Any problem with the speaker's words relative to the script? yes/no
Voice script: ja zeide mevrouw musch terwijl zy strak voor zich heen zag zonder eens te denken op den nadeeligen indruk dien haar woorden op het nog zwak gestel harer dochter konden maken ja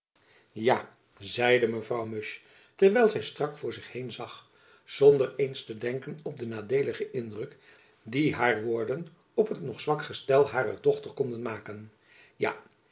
no